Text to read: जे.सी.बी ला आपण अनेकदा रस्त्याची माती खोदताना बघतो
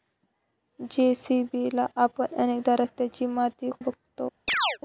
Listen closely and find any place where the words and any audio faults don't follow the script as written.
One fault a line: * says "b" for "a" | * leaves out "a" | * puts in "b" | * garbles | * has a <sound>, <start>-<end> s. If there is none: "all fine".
* leaves out "खोदताना"
* has a chirp, 4.5-4.8 s